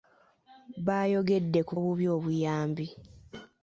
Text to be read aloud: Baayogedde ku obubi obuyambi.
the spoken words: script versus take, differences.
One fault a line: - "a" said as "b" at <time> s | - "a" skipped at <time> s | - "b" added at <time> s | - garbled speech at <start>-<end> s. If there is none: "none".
none